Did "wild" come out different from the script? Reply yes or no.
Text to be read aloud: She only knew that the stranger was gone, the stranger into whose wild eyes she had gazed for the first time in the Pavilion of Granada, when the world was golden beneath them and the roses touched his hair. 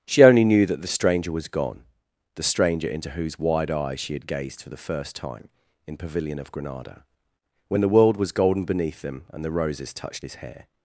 yes